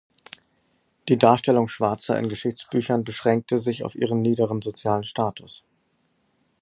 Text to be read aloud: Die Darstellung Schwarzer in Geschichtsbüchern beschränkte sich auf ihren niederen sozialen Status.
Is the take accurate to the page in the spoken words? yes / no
yes